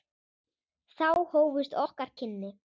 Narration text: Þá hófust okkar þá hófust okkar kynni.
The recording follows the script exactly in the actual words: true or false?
false